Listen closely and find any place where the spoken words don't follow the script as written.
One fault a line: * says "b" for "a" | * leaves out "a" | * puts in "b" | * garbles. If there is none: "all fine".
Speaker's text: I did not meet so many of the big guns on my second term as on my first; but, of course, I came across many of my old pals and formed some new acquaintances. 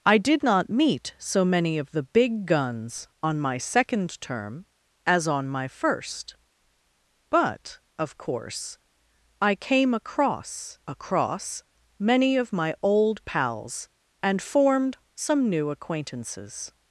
* puts in "across"